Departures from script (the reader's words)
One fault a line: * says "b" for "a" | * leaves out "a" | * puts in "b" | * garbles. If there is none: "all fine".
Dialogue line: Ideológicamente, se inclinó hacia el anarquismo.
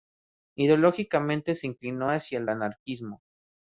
all fine